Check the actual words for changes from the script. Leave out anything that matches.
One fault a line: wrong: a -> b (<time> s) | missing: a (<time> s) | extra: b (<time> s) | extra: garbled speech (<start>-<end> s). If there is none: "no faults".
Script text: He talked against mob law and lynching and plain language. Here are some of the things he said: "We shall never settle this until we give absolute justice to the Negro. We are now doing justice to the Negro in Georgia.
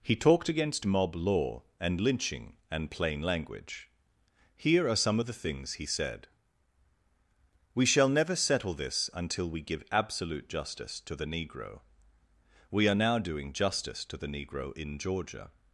no faults